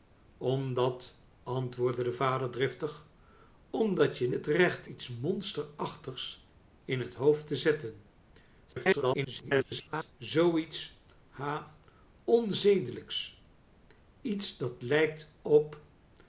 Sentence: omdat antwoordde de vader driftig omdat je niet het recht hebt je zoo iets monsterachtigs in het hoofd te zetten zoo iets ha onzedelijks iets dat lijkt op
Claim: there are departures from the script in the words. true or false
true